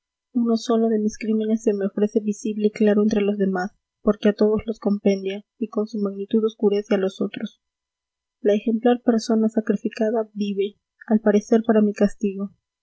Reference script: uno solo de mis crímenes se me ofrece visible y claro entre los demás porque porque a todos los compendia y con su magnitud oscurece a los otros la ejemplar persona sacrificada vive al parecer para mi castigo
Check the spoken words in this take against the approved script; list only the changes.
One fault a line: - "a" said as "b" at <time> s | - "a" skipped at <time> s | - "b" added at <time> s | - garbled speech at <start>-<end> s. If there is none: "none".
- "porque" skipped at 4.3 s